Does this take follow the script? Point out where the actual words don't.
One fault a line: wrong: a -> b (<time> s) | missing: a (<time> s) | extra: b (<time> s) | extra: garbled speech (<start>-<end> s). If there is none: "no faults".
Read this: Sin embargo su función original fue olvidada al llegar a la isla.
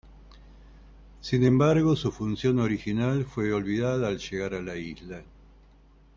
no faults